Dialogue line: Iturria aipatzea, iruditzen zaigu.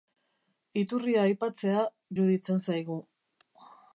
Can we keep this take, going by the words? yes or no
yes